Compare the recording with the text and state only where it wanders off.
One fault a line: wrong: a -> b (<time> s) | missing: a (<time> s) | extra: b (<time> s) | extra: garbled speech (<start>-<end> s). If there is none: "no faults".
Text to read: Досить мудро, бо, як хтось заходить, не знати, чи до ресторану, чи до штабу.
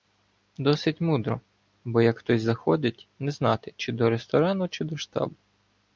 no faults